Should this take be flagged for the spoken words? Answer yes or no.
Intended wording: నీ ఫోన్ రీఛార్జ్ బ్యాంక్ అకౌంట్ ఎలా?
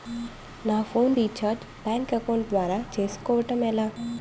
yes